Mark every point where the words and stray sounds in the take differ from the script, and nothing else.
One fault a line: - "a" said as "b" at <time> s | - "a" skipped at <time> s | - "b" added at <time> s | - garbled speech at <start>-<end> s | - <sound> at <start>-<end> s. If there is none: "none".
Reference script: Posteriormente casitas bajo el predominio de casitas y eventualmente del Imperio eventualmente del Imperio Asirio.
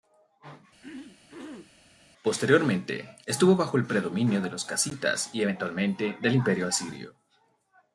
- throat clearing at 0.8-1.8 s
- "casitas" said as "estuvo" at 3.2 s
- "los" added at 4.5 s
- "eventualmente del Imperio" skipped at 6.7 s